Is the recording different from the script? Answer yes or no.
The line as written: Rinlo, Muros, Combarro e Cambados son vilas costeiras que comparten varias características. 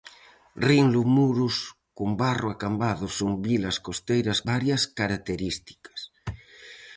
yes